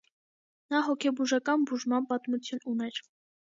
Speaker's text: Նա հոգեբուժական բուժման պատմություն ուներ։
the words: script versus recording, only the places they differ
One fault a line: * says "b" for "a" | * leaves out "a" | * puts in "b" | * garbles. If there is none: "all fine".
all fine